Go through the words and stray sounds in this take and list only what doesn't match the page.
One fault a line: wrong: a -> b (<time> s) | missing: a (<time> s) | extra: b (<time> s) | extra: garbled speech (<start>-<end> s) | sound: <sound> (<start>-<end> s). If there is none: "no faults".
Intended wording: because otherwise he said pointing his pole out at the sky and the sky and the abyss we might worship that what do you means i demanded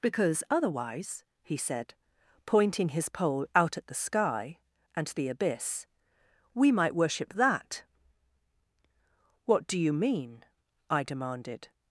missing: sky and the (5.3 s)
wrong: means -> mean (9.9 s)